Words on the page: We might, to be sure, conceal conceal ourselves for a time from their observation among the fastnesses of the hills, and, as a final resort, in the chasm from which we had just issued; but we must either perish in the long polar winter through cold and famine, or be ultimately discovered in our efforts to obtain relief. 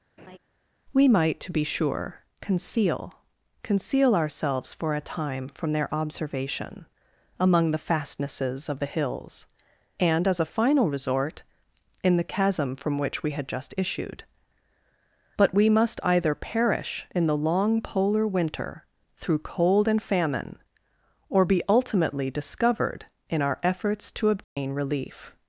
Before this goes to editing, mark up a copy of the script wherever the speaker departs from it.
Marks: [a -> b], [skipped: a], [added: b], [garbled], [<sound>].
[laugh] We might, to be sure, conceal conceal ourselves for a time from their observation among the fastnesses of the hills, and, as a final resort, in the chasm from which we had just issued; but we must either perish in the long polar winter through cold and famine, or be ultimately discovered in our efforts to obtain [dropout] relief.